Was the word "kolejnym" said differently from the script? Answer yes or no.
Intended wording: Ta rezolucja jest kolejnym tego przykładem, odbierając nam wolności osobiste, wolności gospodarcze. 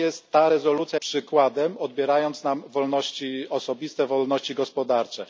yes